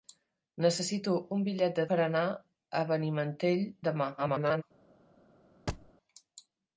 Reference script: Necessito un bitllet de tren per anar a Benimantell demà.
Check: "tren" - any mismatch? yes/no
yes